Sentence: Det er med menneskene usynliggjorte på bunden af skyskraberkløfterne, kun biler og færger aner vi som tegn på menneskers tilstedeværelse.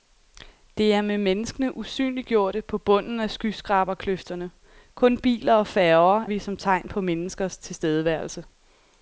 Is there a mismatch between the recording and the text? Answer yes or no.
yes